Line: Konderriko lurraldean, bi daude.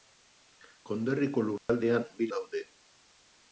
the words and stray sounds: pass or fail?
fail